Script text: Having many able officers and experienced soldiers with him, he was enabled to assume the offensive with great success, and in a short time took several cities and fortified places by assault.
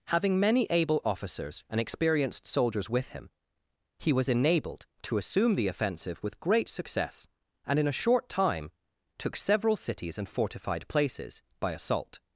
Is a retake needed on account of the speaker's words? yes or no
no